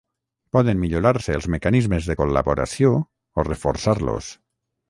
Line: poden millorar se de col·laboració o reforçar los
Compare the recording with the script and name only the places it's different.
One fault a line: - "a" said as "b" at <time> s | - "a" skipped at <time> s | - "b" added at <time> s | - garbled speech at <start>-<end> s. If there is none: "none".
- "els mecanismes" added at 1.4 s